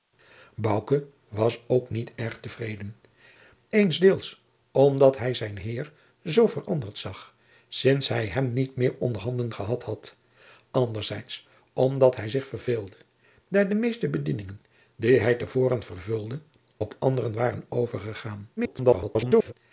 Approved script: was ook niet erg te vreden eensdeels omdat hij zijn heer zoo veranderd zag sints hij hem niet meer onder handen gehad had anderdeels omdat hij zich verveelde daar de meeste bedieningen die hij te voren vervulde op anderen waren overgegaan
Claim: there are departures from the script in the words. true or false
true